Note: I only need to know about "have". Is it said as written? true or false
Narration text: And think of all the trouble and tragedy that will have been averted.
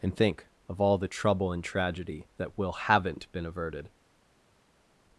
false